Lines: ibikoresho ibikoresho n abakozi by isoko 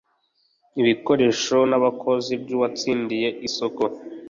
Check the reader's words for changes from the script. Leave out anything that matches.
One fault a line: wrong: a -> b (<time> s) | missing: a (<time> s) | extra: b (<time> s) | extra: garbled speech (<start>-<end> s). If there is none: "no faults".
missing: ibikoresho (1.6 s)
extra: uwatsindiye (2.5 s)